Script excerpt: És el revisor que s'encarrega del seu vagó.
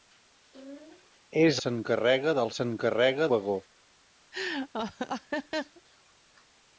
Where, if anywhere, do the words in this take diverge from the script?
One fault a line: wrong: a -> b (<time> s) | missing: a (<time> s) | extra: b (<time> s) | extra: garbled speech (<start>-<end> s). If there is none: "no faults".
missing: el revisor que (1.6 s)
wrong: seu -> s'encarrega (2.5 s)